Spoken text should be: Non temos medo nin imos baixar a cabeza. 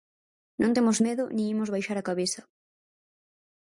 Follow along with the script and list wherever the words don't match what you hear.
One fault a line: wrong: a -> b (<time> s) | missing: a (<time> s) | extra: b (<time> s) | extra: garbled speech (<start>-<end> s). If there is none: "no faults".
no faults